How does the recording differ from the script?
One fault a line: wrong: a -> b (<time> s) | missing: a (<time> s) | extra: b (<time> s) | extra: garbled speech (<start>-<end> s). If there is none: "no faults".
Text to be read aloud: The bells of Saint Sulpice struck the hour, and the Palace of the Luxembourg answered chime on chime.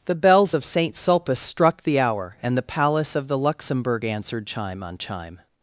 no faults